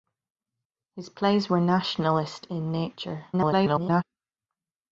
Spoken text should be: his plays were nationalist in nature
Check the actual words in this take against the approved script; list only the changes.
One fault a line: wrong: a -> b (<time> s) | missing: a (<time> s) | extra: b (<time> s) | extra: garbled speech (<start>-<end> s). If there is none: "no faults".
extra: garbled speech (3.3-4.0 s)